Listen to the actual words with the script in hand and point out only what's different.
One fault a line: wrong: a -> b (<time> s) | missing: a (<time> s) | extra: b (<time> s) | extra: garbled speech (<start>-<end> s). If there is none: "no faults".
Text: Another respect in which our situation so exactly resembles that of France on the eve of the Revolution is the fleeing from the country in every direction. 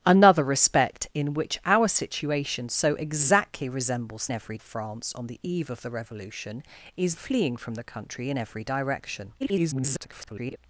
wrong: that -> every (4.3 s)
missing: the (7.1 s)
extra: garbled speech (9.4-10.6 s)